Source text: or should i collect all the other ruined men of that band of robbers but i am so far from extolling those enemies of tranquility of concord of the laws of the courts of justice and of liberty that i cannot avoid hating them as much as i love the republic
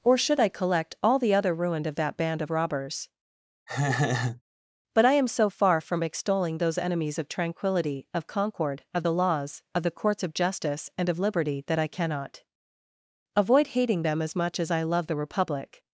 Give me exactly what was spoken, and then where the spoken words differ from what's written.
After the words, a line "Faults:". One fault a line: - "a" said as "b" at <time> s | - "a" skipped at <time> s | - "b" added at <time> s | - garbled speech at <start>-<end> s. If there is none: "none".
or should i collect all the other ruined of that band of robbers but i am so far from extolling those enemies of tranquility of concord of the laws of the courts of justice and of liberty that i cannot avoid hating them as much as i love the republic
Faults:
- "men" skipped at 1.9 s